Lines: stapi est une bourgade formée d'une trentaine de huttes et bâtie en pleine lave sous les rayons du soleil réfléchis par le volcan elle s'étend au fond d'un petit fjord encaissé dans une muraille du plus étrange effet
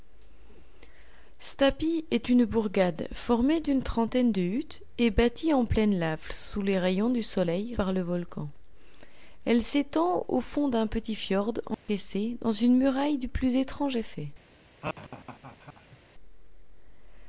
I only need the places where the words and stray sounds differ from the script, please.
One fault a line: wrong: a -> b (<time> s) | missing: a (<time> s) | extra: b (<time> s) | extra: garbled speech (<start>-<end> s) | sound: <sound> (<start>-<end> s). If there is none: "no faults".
missing: réfléchis (7.8 s)
sound: dropout (11.7-11.9 s)
sound: laugh (14.8-16.0 s)